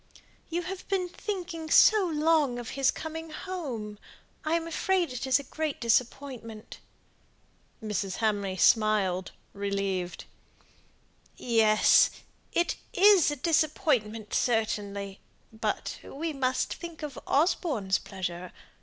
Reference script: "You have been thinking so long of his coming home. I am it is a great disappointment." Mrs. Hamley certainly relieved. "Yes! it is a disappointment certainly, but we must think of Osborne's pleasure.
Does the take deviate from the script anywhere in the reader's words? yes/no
yes